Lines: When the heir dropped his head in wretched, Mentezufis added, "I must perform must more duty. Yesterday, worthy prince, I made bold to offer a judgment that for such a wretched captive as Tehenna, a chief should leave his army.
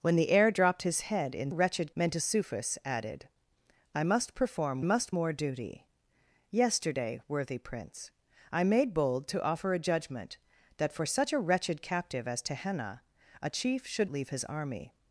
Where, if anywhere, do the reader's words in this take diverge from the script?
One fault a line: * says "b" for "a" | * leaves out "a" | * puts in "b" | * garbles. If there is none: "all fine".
all fine